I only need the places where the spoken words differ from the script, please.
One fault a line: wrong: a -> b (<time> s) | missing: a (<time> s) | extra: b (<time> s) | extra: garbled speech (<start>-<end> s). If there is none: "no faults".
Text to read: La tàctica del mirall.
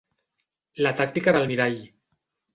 no faults